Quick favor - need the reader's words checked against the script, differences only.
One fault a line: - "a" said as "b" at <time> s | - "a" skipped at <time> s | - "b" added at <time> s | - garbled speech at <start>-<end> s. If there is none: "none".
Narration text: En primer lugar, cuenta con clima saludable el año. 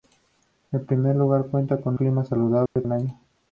none